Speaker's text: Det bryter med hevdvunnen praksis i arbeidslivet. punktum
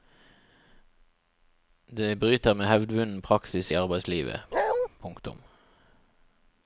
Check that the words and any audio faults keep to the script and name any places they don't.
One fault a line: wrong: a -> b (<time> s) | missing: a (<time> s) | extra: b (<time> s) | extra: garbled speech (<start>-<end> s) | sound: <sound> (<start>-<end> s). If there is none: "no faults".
sound: bark (4.5-4.9 s)